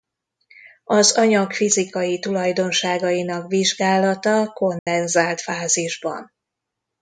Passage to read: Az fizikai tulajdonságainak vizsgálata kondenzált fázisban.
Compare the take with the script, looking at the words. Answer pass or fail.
fail